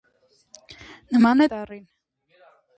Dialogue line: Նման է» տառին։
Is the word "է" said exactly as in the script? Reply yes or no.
yes